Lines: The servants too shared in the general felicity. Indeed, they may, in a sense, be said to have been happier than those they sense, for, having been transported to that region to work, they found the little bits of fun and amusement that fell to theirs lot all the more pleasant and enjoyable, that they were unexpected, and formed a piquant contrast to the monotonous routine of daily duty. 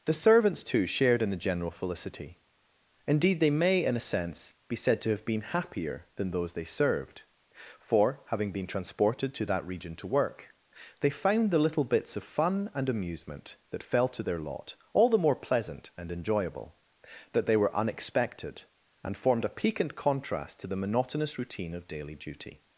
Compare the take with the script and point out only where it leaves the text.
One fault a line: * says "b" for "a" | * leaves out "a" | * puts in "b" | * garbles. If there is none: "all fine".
* says "served" for "sense"
* says "their" for "theirs"